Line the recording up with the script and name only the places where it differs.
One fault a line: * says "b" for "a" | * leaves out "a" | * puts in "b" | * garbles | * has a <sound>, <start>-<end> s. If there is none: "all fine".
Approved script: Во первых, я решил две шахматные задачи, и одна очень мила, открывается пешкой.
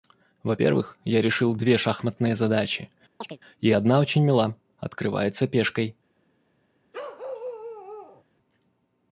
* has a chirp, 3.2-3.4 s
* has a bark, 6.9-8.2 s